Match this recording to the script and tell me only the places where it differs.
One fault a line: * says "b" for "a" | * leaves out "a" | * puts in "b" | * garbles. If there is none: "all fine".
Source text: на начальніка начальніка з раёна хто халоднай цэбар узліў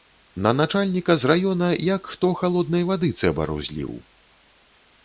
* leaves out "начальніка"
* puts in "як"
* puts in "вады"